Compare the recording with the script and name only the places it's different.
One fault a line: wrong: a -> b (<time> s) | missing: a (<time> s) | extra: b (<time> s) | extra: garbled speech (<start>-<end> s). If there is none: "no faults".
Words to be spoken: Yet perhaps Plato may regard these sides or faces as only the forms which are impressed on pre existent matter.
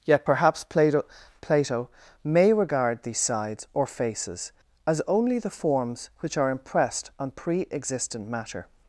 extra: Plato (1.4 s)